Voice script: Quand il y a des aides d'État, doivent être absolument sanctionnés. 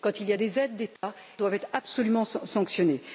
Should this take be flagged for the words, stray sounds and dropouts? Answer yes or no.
yes